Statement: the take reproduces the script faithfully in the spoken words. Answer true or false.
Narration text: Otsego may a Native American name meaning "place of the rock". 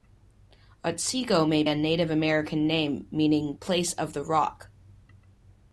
true